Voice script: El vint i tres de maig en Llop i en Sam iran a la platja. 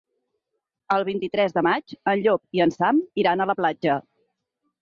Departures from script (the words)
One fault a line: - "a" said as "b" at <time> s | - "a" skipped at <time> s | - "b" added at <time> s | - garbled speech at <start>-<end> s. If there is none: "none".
none